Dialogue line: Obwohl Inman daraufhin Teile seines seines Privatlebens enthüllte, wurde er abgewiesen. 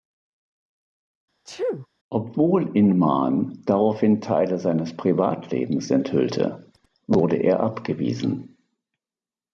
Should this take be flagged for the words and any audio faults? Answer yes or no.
yes